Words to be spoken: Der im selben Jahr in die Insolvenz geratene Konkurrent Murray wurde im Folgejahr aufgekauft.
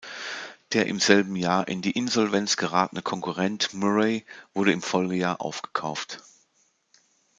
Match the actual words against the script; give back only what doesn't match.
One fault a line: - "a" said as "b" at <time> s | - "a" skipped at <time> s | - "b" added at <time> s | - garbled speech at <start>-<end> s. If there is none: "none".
none